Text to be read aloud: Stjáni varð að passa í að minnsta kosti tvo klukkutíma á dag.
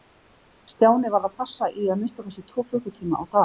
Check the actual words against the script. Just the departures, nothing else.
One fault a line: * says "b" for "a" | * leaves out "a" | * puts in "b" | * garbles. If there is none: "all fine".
all fine